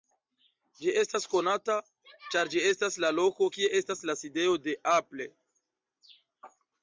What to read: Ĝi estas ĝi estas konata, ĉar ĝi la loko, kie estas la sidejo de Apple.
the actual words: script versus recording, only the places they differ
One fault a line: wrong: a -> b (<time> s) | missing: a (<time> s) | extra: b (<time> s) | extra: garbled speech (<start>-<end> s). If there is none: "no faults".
missing: ĝi estas (1.3 s)
extra: estas (2.7 s)